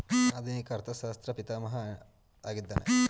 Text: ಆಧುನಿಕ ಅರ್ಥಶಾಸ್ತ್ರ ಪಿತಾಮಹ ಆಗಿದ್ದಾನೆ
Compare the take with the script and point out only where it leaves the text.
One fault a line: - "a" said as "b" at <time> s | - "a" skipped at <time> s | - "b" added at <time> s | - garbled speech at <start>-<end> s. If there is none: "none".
none